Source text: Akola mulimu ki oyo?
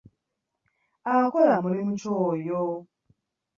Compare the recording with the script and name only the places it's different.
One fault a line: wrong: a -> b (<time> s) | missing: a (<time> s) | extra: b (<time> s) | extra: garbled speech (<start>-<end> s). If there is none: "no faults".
no faults